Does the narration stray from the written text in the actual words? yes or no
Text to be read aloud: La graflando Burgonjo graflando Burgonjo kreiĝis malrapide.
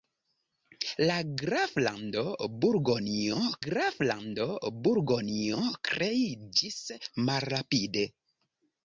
no